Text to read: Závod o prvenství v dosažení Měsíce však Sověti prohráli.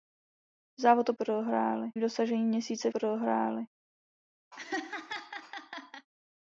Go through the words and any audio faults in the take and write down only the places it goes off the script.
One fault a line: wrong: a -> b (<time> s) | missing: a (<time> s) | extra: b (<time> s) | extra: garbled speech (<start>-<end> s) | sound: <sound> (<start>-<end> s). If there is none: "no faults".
wrong: prvenství -> prohráli (1.2 s)
missing: však Sověti (2.9 s)
sound: laugh (4.5-6.1 s)